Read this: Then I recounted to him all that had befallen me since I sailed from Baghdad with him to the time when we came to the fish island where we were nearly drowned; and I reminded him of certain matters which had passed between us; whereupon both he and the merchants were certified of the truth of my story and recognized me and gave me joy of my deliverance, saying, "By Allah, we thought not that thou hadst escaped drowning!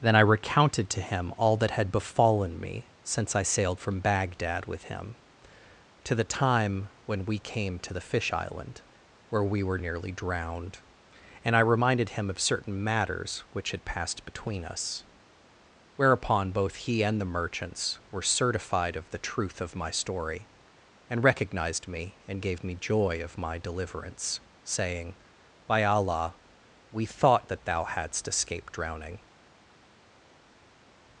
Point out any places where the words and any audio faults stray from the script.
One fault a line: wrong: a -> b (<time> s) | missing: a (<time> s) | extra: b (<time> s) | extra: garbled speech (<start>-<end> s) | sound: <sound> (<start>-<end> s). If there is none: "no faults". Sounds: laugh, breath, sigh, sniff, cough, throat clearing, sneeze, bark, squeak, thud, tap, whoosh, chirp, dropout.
missing: not (27.5 s)